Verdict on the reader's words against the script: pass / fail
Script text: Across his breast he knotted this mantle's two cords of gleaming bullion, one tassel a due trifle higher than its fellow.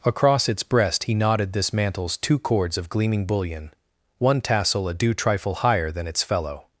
fail